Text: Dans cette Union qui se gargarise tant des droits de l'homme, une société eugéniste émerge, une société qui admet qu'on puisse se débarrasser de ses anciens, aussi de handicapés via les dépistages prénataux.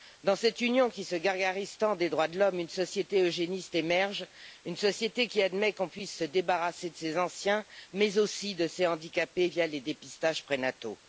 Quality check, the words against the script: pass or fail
fail